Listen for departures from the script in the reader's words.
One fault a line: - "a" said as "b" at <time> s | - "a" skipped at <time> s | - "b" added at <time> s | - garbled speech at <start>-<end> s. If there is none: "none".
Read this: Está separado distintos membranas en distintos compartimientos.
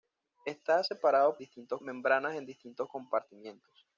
none